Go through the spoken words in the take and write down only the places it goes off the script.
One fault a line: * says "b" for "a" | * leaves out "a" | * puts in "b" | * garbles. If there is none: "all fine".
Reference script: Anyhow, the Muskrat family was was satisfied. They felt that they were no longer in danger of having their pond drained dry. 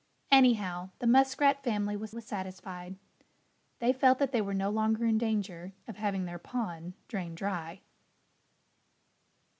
all fine